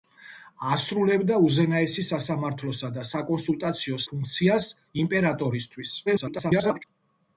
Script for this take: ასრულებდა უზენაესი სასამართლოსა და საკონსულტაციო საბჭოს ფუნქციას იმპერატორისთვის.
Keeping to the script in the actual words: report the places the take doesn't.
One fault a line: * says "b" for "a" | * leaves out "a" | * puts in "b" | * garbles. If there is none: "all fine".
* leaves out "საბჭოს"
* garbles